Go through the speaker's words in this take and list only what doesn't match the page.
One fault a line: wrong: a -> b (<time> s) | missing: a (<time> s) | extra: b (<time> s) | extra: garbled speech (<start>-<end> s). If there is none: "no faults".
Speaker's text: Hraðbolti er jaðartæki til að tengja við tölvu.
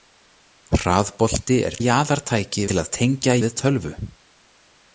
no faults